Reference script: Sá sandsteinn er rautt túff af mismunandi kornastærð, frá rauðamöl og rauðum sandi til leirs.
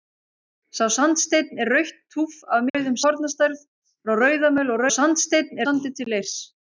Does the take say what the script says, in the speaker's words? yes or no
no